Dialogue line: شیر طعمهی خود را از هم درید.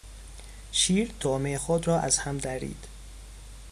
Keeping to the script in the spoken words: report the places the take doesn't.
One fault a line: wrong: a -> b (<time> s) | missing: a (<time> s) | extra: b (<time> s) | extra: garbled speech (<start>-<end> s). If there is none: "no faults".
no faults